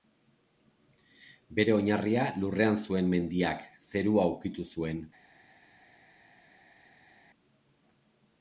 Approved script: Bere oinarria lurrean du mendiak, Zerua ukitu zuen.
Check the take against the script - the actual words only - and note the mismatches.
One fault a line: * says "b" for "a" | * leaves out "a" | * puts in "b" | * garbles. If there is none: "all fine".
* says "zuen" for "du"